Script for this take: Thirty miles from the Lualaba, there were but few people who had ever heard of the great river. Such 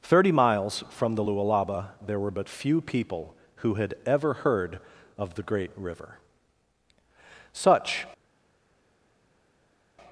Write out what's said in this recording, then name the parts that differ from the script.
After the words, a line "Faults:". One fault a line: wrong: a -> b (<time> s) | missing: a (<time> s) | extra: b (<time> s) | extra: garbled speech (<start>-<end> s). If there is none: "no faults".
Thirty miles from the Lualaba, there were but few people who had ever heard of the great river. Such
Faults:
no faults